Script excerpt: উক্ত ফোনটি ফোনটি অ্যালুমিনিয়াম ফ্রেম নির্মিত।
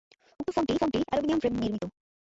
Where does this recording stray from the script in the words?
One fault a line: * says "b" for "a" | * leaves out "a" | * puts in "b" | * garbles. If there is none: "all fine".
all fine